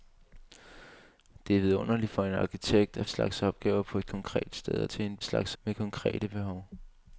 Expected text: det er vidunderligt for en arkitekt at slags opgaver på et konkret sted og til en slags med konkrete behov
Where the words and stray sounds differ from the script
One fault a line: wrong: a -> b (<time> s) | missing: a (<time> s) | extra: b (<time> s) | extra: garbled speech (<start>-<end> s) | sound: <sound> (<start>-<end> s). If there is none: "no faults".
no faults